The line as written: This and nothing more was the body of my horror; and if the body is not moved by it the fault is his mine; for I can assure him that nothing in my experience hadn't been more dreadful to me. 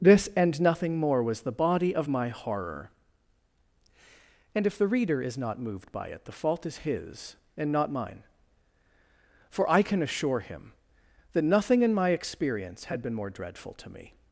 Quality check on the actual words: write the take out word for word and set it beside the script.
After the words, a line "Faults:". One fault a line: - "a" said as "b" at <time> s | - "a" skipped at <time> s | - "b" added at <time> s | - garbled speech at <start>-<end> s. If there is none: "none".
This and nothing more was the body of my horror; and if the reader is not moved by it the fault is his and not mine; for I can assure him that nothing in my experience had been more dreadful to me.
Faults:
- "body" said as "reader" at 4.9 s
- "and not" added at 7.6 s
- "hadn't" said as "had" at 12.8 s